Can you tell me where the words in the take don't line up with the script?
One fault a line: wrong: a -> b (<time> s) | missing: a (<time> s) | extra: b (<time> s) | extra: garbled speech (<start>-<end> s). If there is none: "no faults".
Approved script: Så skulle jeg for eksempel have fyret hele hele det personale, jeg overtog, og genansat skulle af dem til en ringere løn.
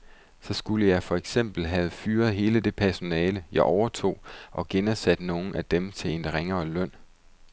missing: hele (2.6 s)
wrong: skulle -> nogle (5.2 s)